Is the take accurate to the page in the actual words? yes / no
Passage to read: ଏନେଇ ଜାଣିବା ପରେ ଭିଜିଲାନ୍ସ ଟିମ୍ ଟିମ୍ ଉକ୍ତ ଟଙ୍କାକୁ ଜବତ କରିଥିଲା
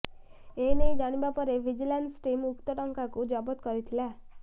no